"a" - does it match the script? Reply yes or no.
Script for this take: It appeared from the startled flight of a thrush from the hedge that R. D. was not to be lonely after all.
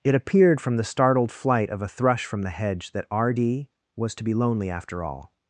yes